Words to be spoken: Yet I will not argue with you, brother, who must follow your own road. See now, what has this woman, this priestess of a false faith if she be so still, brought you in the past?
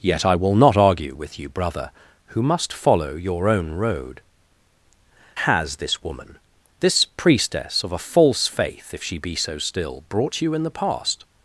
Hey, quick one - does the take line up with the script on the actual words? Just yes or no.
no